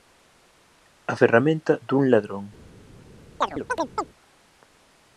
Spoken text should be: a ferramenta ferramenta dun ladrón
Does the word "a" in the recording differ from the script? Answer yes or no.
no